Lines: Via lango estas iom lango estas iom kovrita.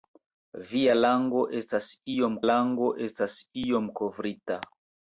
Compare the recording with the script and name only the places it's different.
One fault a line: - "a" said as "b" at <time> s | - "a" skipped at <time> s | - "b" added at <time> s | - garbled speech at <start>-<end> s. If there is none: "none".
none